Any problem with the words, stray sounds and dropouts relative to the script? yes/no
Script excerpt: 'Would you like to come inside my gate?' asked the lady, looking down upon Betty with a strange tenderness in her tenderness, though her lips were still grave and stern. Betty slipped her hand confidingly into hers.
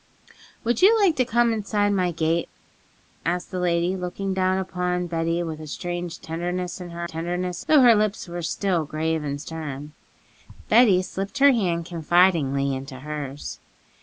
no